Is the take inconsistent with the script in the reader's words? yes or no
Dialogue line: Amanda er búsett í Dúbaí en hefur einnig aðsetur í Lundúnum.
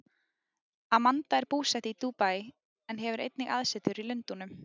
no